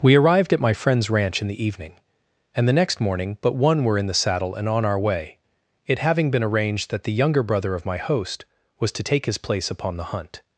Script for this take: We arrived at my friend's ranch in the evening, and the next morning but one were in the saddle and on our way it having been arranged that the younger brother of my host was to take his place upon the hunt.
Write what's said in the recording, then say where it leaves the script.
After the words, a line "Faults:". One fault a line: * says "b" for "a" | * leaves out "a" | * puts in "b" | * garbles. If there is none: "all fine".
We arrived at my friend's ranch in the evening, and the next morning but one were in the saddle and on our way it having been arranged that the younger brother of my host was to take his place upon the hunt.
Faults:
all fine